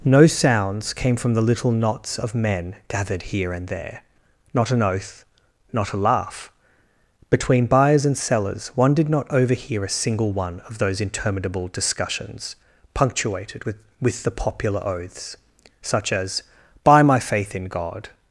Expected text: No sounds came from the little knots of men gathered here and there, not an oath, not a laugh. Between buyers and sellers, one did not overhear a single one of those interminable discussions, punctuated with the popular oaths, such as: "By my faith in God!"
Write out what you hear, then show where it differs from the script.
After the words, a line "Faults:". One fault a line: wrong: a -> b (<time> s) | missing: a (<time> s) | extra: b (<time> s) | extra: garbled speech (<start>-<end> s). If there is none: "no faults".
No sounds came from the little knots of men gathered here and there, not an oath, not a laugh. Between buyers and sellers, one did not overhear a single one of those interminable discussions, punctuated with with the popular oaths, such as: "By my faith in God!"
Faults:
extra: with (14.0 s)